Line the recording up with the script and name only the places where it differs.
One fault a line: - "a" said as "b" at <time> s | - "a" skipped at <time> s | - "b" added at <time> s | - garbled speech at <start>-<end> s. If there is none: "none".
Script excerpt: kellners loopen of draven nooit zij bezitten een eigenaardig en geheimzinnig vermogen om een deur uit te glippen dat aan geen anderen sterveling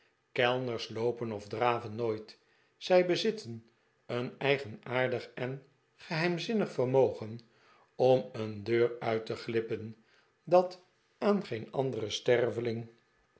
none